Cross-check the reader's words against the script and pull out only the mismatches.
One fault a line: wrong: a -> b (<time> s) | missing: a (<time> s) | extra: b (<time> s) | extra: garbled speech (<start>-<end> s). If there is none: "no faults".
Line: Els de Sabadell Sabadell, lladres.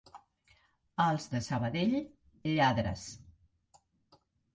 missing: Sabadell (2.0 s)